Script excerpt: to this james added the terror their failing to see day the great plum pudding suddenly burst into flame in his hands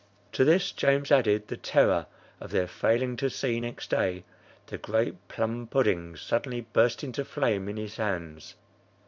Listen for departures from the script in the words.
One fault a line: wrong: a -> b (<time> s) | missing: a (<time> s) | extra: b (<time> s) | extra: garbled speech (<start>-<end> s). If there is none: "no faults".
extra: of (2.4 s)
extra: next (3.6 s)